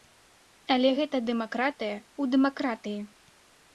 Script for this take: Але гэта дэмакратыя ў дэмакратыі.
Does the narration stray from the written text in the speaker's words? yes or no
no